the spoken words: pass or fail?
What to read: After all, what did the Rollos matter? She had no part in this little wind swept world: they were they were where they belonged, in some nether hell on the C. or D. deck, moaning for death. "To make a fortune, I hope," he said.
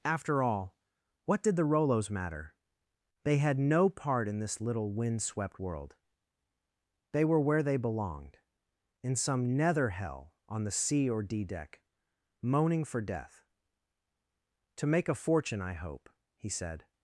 fail